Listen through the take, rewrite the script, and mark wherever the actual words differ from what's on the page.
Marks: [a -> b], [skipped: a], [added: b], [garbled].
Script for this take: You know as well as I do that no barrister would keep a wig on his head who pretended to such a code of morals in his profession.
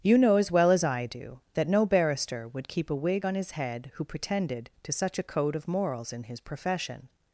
You know as well as I do that no barrister would keep a wig on his head who pretended to such a code of morals in his profession.